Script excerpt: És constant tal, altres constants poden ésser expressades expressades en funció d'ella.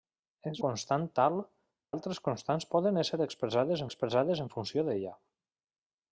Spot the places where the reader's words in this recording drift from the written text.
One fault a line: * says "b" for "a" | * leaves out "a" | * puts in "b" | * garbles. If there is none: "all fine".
all fine